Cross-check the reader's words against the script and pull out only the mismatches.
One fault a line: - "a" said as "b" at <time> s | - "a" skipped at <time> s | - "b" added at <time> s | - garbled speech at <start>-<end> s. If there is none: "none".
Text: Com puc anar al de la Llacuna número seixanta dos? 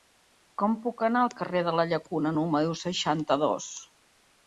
- "carrer" added at 1.4 s